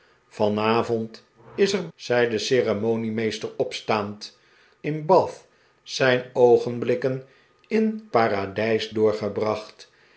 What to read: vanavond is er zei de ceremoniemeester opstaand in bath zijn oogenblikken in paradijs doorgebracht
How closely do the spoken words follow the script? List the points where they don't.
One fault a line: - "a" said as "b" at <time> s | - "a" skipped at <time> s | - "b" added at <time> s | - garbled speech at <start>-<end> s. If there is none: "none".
none